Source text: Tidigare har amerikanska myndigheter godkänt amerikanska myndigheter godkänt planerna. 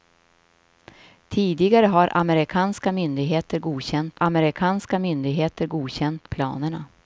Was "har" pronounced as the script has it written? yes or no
yes